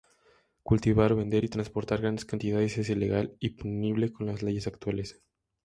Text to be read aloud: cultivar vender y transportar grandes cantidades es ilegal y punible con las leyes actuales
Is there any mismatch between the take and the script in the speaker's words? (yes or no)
no